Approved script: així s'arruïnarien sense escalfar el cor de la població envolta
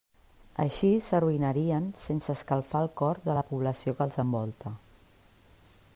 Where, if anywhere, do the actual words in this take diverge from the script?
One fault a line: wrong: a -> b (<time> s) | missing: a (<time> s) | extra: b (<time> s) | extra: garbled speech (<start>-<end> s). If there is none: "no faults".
extra: que els (4.0 s)